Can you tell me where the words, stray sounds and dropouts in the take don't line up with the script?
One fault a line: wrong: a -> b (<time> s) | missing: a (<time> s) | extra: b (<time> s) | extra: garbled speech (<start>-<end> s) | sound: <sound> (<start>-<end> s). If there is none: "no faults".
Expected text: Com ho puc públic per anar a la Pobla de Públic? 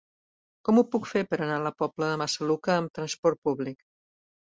wrong: públic -> fer (1.1 s)
extra: Massaluca amb trasport (2.2 s)